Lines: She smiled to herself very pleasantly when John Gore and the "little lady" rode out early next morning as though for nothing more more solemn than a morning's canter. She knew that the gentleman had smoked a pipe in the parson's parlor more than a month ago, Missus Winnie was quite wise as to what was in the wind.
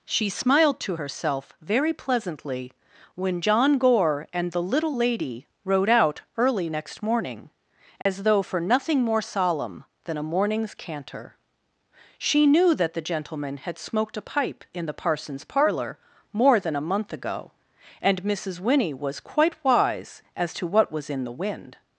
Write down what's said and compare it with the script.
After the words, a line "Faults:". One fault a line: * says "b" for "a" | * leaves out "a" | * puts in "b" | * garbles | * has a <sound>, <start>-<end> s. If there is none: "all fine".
She smiled to herself very pleasantly when John Gore and the "little lady" rode out early next morning as though for nothing more solemn than a morning's canter. She knew that the gentleman had smoked a pipe in the parson's parlor more than a month ago, and Missus Winnie was quite wise as to what was in the wind.
Faults:
* has a dropout, 8.0-8.1 s
* leaves out "more"
* puts in "and"